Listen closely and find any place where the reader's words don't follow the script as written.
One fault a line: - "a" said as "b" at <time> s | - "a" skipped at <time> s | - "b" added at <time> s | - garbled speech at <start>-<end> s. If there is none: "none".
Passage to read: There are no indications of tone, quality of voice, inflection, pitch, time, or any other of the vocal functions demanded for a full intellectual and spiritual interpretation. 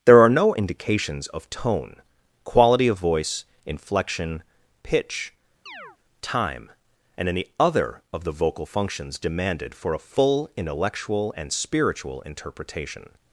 - "or" said as "and" at 7.2 s